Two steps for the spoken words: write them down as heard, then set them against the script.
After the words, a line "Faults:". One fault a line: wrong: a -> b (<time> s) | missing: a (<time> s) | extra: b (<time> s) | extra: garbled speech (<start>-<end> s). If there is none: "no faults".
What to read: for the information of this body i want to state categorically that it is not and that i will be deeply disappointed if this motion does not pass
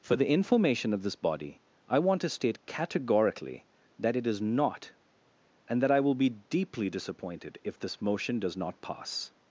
for the information of this body i want to state categorically that it is not and that i will be deeply disappointed if this motion does not pass
Faults:
no faults